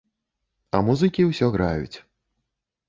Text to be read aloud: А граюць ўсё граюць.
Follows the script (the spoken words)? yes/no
no